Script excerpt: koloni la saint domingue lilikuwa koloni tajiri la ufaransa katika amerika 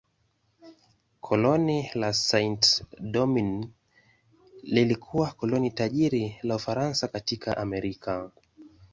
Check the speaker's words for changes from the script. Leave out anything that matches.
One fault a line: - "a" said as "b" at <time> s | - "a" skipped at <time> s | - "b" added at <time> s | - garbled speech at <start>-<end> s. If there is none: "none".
none